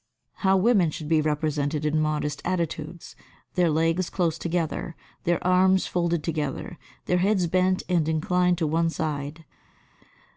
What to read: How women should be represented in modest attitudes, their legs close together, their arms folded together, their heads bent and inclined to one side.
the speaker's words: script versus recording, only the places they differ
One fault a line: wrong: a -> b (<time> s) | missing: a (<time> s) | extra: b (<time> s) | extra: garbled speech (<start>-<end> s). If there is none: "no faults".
no faults